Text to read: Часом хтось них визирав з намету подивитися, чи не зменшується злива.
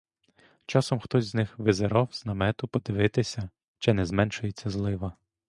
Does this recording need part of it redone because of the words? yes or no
yes